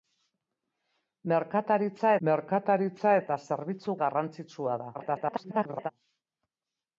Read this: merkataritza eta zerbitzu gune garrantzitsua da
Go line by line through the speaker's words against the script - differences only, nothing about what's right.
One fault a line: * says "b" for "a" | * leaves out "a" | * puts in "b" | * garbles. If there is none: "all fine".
* puts in "merkataritza"
* leaves out "gune"
* garbles